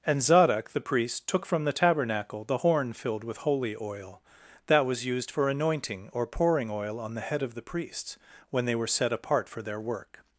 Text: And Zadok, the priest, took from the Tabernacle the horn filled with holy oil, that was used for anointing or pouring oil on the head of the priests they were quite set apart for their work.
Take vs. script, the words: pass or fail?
fail